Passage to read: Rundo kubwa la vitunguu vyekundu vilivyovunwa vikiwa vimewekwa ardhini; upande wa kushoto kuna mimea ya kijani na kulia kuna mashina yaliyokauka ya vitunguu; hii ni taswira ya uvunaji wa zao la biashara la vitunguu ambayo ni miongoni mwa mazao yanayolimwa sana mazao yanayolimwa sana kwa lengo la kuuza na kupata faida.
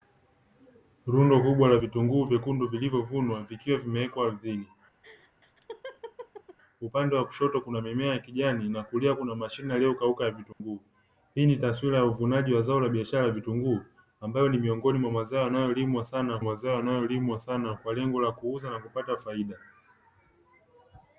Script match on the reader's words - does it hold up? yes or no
yes